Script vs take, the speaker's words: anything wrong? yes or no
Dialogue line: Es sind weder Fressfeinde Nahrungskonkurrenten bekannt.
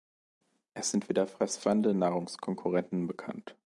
no